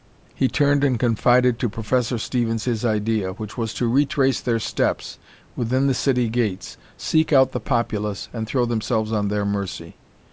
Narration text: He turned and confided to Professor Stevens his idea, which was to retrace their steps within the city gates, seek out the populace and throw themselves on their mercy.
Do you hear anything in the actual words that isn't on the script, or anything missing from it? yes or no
no